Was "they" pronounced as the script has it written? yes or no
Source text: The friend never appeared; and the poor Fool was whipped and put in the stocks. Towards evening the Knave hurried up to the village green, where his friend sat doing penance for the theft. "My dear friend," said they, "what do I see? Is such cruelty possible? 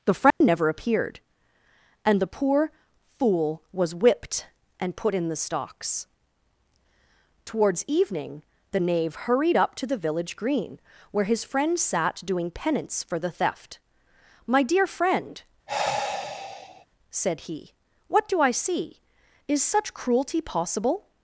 no